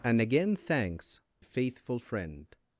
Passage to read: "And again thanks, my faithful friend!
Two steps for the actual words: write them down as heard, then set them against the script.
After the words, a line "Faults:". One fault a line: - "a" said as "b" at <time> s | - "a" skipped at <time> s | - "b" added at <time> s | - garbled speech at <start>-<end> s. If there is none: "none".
"And again thanks, faithful friend!
Faults:
- "my" skipped at 1.2 s